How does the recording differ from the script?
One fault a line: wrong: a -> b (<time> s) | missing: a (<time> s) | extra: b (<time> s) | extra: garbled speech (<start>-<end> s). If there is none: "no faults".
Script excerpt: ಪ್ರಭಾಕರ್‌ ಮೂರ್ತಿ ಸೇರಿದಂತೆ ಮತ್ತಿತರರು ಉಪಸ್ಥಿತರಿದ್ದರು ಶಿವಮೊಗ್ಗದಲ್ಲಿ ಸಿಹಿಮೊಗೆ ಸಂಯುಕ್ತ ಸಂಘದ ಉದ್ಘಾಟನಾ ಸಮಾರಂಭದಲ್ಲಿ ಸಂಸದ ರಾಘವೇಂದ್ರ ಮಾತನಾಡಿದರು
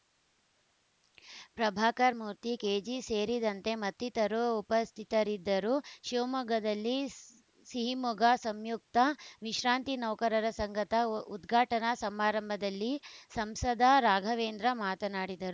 extra: ಕೆಜಿ (2.6 s)
extra: ವಿಶ್ರಾಂತಿ ನೌಕರರ (9.4 s)